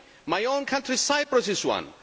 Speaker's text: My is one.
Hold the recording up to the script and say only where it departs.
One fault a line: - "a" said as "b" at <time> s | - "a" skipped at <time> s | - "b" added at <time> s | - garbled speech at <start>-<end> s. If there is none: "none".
- "own country Cyprus" added at 0.5 s